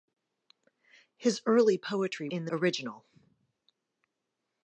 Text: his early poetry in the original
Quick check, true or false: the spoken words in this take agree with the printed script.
true